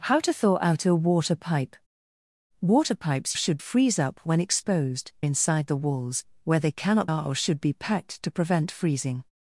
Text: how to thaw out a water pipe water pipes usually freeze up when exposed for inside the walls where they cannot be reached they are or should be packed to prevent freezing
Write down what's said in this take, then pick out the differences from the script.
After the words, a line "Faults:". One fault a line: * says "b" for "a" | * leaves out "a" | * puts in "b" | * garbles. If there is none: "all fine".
how to thaw out a water pipe water pipes should freeze up when exposed inside the walls where they cannot are or should be packed to prevent freezing
Faults:
* says "should" for "usually"
* leaves out "for"
* leaves out "be reached they"